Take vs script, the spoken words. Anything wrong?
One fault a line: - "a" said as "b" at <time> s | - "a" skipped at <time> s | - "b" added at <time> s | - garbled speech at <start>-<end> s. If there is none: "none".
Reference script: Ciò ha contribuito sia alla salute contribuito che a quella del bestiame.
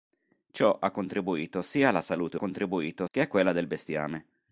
none